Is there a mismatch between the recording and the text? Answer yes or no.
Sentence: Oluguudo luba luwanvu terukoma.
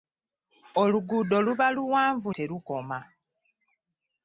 no